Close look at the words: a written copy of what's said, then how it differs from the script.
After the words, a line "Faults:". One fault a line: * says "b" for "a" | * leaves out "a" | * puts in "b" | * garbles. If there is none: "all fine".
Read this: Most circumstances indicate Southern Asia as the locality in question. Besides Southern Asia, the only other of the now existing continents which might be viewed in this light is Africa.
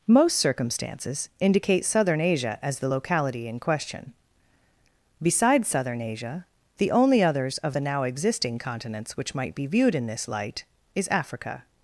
Most circumstances indicate Southern Asia as the locality in question. Besides Southern Asia, the only others of the now existing continents which might be viewed in this light is Africa.
Faults:
* says "others" for "other"